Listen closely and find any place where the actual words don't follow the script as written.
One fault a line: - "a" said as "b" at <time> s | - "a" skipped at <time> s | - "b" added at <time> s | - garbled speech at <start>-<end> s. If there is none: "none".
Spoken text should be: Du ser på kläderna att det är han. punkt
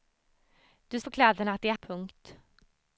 - "ser" skipped at 1.0 s
- "han" skipped at 1.7 s